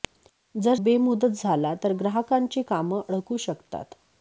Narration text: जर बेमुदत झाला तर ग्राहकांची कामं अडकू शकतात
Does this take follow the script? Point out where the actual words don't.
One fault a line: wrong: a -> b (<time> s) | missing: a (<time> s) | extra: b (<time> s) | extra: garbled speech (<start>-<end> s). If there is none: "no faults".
no faults